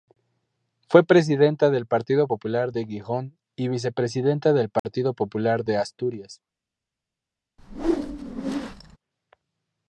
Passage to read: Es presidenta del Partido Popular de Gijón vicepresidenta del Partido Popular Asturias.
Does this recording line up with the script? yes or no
no